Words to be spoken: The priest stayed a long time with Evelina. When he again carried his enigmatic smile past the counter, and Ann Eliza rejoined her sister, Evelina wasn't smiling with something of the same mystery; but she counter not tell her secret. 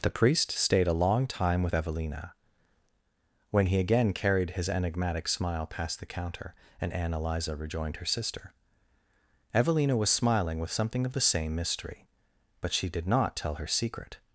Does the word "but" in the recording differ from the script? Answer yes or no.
no